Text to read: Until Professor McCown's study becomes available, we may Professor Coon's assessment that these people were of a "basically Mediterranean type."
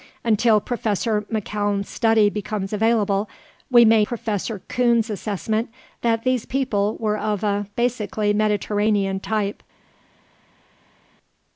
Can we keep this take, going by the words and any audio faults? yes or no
yes